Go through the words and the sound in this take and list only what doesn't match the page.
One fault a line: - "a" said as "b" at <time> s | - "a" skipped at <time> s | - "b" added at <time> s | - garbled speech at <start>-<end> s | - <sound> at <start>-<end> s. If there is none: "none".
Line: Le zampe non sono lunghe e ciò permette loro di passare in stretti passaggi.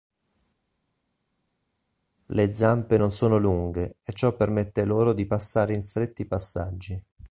none